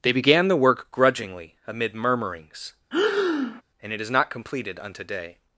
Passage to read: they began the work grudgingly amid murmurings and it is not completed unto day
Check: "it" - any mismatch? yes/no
no